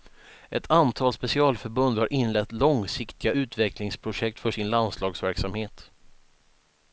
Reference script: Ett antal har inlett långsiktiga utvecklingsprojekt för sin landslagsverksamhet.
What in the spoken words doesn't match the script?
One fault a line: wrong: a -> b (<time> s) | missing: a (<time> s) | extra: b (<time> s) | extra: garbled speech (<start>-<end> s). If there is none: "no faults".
extra: specialförbund (1.1 s)